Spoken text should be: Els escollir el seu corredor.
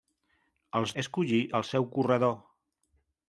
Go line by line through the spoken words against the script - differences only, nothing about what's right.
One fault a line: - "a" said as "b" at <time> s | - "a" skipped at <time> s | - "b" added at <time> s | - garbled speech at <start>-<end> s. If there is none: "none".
none